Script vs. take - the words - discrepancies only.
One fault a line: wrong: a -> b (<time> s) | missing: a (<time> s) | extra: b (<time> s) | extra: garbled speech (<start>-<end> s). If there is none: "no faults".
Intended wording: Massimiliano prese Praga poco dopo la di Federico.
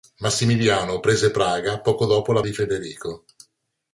no faults